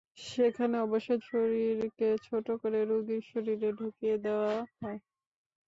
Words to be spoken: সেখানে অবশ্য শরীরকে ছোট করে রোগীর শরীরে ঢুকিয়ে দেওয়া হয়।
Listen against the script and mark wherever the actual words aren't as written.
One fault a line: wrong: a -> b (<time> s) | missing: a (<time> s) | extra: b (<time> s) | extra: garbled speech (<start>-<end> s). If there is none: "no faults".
no faults